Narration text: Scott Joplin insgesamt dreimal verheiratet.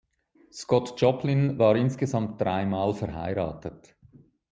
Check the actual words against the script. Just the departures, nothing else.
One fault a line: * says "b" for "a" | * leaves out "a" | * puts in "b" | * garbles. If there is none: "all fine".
* puts in "war"